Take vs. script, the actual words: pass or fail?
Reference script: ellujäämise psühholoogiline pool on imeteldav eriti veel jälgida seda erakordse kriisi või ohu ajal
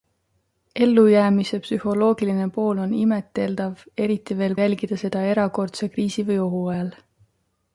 pass